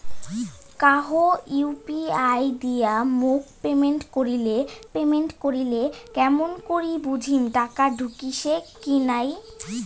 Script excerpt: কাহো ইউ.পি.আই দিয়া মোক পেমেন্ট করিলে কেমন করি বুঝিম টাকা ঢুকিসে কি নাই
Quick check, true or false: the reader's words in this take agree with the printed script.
false